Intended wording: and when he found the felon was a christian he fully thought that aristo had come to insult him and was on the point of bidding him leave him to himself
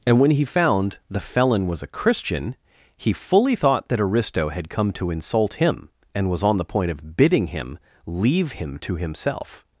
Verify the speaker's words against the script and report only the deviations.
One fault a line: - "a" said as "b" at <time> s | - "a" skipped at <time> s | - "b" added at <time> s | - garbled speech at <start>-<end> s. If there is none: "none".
none